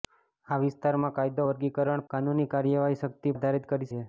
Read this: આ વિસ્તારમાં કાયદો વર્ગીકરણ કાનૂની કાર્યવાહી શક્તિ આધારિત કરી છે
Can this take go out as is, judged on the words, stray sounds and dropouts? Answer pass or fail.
pass